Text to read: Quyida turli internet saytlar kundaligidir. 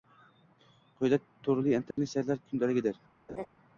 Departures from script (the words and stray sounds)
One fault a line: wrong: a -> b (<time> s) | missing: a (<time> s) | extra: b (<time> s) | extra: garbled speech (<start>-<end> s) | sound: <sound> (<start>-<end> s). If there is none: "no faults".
sound: dropout (1.9-2.0 s)
sound: laugh (3.3-3.5 s)